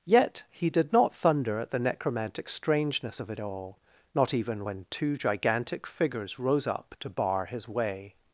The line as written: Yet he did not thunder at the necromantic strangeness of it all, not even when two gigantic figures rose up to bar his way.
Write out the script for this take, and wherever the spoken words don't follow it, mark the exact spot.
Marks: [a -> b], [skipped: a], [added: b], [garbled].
Yet he did not thunder at the necromantic strangeness of it all, not even when two gigantic figures rose up to bar his way.